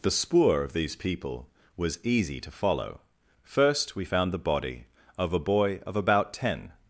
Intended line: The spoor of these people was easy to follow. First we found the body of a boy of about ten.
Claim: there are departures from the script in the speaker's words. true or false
false